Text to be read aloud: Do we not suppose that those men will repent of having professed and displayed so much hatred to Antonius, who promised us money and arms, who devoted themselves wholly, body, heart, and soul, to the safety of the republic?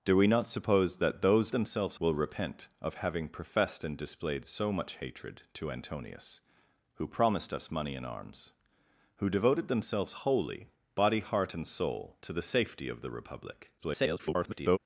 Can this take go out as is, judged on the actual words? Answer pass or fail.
fail